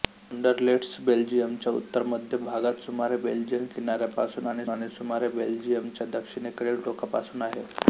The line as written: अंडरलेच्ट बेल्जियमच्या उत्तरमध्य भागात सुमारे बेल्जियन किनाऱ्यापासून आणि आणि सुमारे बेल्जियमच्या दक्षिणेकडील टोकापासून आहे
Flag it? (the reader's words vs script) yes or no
no